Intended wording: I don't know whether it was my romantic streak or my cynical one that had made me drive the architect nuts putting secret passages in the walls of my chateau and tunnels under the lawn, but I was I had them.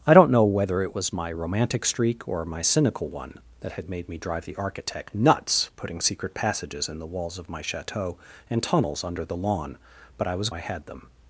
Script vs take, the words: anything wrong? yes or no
no